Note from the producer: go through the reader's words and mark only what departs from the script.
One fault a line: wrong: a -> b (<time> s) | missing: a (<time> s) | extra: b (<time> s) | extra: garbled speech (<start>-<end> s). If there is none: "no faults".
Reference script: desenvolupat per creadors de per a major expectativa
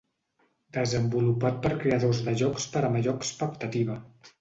extra: jocs (2.4 s)